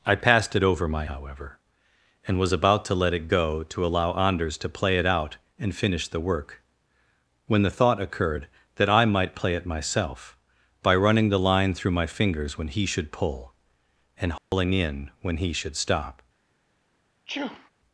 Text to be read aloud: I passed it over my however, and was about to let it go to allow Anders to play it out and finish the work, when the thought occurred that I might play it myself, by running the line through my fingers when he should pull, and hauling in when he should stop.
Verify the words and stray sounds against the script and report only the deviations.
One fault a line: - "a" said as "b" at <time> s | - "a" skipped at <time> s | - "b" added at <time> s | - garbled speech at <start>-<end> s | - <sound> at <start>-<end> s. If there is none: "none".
- dropout at 14.4-14.5 s
- sneeze at 17.2-17.7 s